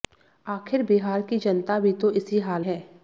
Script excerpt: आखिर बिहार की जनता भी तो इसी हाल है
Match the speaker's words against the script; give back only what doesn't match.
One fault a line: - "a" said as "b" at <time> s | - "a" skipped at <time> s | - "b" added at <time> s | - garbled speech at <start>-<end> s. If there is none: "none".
none